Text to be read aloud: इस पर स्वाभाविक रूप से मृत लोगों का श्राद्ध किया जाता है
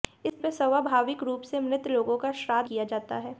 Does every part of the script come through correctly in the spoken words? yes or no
yes